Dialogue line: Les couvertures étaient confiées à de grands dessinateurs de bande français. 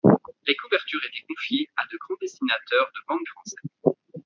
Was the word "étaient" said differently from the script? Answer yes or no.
no